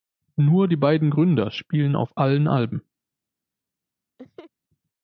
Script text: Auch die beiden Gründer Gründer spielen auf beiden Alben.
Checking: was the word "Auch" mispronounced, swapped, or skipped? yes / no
yes